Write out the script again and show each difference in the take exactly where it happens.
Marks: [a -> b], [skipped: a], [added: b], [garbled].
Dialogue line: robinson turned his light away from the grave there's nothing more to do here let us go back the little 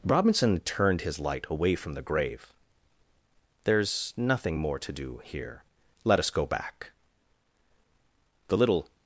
robinson turned his light away from the grave there's nothing more to do here let us go back the little